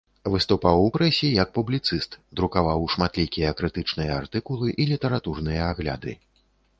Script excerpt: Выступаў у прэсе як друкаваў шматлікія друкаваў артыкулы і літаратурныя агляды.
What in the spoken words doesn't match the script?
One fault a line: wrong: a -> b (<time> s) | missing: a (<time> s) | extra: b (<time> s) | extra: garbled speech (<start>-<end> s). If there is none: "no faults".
extra: публіцыст (1.6 s)
wrong: друкаваў -> крытычныя (3.6 s)